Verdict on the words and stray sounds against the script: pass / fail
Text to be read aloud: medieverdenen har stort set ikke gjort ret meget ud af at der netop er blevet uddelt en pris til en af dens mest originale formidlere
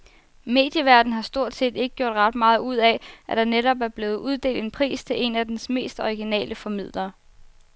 pass